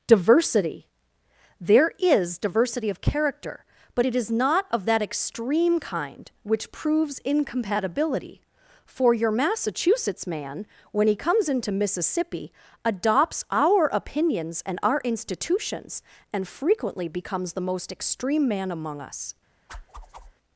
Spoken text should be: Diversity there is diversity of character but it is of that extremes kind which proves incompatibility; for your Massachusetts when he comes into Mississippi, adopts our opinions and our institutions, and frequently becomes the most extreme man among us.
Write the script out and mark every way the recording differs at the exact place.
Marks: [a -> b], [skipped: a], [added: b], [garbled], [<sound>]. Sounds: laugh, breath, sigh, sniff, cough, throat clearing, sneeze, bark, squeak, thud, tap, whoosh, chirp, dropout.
Diversity there is diversity of character but it is [added: not] of that [extremes -> extreme] kind which proves incompatibility; for your Massachusetts [added: man] when he comes into Mississippi, adopts our opinions and our institutions, and frequently becomes the most extreme man among us. [whoosh]